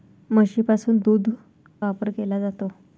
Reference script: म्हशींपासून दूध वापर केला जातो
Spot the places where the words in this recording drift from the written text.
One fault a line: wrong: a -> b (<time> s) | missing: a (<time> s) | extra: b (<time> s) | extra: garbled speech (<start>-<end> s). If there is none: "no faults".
no faults